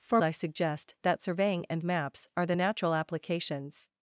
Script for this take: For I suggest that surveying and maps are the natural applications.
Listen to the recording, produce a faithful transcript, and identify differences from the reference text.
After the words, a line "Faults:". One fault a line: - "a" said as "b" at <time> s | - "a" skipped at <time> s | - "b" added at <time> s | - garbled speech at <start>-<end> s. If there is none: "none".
For I suggest that surveying and maps are the natural applications.
Faults:
none